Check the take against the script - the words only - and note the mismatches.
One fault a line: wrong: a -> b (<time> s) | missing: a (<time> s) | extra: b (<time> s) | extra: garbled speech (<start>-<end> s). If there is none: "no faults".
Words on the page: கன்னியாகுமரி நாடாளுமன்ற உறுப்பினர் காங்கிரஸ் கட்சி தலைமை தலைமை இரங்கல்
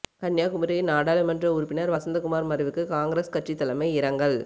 extra: வசந்தகுமார் மறைவுக்கு (1.9 s)
missing: தலைமை (3.9 s)